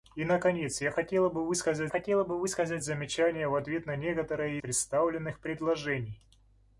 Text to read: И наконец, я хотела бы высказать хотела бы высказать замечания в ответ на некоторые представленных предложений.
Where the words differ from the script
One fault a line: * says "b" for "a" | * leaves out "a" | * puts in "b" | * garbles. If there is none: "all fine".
all fine